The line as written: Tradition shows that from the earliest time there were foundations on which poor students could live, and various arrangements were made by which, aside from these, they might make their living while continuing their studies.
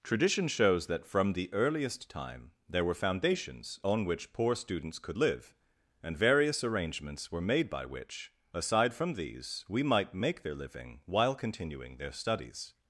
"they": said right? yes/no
no